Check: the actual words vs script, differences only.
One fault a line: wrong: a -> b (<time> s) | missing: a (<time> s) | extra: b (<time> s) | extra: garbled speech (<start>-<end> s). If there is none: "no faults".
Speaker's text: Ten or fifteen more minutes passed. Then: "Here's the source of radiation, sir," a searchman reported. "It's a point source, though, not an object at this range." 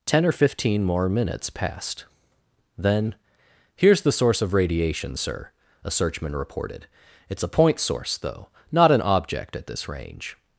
no faults